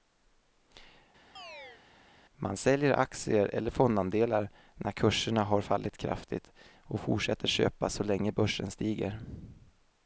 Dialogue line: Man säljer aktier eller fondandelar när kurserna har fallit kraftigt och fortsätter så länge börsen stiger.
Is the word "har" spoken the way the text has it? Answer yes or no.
yes